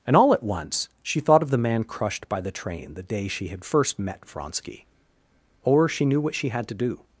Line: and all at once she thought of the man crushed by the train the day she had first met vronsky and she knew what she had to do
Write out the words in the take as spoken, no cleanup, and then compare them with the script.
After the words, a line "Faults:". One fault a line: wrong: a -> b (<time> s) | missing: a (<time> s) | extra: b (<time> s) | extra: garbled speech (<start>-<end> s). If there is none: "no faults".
and all at once she thought of the man crushed by the train the day she had first met vronsky or she knew what she had to do
Faults:
wrong: and -> or (5.6 s)